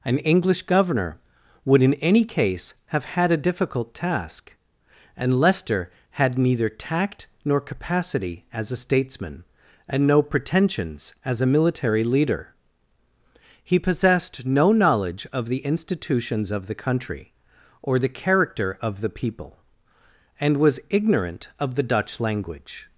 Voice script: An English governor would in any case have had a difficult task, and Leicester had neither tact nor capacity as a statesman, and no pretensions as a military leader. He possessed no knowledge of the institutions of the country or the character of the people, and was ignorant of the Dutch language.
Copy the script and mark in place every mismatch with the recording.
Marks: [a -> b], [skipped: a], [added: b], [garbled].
An English governor would in any case have had a difficult task, and Leicester had neither tact nor capacity as a statesman, and no pretensions as a military leader. He possessed no knowledge of the institutions of the country or the character of the people, and was ignorant of the Dutch language.